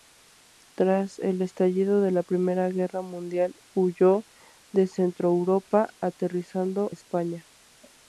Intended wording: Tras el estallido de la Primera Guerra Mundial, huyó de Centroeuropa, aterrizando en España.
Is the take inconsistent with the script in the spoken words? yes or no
yes